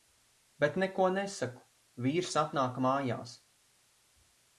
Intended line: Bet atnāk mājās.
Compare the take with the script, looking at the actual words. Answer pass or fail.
fail